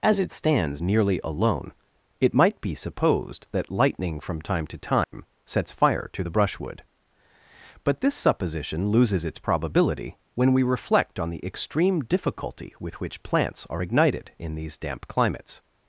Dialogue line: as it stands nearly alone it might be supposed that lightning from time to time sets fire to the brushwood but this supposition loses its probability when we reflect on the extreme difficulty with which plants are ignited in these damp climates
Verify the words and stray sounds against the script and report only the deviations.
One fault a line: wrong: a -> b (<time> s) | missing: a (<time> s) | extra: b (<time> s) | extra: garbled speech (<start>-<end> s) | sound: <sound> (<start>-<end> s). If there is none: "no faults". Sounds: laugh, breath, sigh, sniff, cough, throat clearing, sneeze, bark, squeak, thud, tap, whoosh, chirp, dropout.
sound: dropout (5.0-5.1 s)